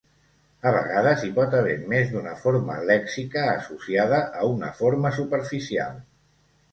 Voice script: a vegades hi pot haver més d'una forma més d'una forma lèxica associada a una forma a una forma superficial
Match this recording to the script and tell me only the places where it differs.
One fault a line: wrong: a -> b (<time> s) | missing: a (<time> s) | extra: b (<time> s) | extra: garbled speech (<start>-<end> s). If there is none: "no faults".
missing: més d'una forma (2.8 s)
missing: a una forma (5.1 s)